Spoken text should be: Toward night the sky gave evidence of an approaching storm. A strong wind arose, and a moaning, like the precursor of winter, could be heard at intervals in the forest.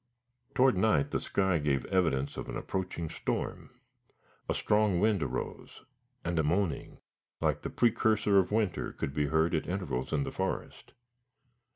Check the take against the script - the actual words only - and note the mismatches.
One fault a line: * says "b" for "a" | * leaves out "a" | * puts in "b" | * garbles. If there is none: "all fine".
all fine